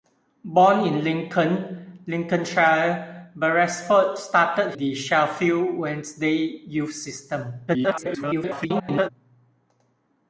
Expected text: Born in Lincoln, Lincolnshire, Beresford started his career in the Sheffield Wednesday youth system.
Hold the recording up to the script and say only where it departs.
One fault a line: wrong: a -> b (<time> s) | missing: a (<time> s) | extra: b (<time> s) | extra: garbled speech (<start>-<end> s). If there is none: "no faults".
missing: his career in (4.7 s)
extra: garbled speech (7.7-9.1 s)